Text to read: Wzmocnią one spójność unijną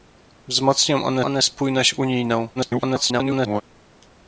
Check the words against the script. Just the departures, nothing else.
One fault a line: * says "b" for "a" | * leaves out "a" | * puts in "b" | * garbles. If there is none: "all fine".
* puts in "one"
* garbles